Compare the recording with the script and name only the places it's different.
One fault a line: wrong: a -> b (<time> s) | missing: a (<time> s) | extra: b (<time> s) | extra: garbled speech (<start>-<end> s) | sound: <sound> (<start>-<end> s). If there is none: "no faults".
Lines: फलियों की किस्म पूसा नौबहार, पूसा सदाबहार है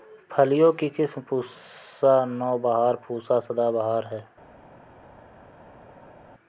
no faults